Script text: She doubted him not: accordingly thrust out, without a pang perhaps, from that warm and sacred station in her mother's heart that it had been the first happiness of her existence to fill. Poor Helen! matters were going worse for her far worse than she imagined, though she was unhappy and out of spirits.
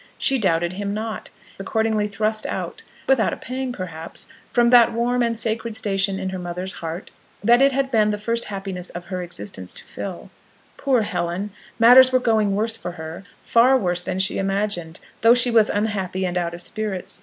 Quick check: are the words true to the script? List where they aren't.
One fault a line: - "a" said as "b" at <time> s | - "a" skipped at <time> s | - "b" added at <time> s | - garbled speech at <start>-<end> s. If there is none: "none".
none